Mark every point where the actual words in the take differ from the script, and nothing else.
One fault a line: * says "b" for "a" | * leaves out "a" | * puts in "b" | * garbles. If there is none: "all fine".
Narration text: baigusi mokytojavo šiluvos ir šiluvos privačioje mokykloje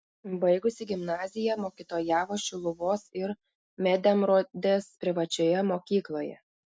* puts in "gimnaziją"
* says "medemrodės" for "šiluvos"